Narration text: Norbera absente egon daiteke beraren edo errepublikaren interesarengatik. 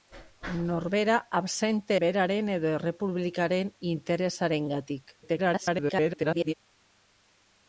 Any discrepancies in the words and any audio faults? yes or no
yes